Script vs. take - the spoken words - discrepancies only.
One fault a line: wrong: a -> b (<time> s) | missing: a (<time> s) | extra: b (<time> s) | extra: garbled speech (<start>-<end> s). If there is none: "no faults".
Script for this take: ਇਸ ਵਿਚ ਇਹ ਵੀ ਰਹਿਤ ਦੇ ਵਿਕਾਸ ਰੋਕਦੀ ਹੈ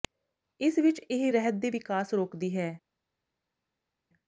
missing: ਵੀ (1.3 s)